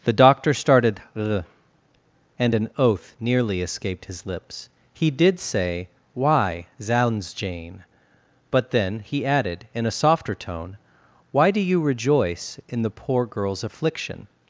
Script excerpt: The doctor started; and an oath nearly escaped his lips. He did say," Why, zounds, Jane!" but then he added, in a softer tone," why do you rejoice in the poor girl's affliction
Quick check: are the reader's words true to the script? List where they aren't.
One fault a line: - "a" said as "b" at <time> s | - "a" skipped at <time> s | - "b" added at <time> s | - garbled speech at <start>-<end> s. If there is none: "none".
none